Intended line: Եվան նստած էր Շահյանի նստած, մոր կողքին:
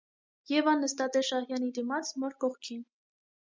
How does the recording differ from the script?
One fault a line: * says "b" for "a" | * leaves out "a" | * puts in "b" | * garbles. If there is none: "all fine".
* says "դիմաց" for "նստած"